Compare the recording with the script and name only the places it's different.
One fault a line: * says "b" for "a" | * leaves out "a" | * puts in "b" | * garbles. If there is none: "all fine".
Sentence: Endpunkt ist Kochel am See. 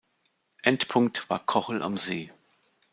* says "war" for "ist"